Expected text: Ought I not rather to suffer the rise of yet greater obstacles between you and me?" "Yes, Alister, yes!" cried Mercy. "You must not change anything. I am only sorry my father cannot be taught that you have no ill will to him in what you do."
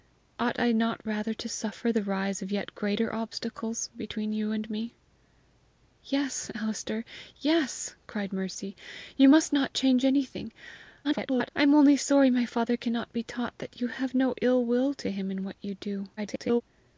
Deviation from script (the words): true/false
true